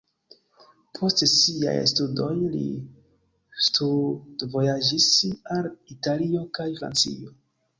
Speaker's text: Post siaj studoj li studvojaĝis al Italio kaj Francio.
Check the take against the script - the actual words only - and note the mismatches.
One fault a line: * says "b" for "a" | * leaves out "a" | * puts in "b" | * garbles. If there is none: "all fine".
all fine